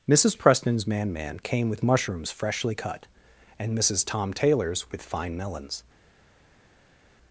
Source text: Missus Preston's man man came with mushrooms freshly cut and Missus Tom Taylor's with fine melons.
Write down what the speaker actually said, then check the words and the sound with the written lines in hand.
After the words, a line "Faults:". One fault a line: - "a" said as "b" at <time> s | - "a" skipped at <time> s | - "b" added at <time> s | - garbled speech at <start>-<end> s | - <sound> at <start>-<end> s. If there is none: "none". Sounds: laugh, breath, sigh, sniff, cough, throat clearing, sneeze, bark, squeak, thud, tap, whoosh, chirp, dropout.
Missus Preston's man man came with mushrooms freshly cut and Missus Tom Taylor's with fine melons.
Faults:
none